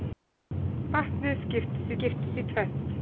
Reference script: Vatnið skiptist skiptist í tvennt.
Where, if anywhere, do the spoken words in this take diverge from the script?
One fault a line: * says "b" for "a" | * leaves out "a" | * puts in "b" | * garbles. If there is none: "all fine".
all fine